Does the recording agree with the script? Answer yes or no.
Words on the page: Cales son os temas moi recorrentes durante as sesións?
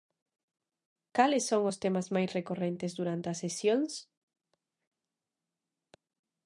no